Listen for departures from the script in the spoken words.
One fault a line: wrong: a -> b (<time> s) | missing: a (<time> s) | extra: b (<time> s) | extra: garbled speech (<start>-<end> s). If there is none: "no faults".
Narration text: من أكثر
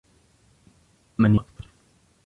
no faults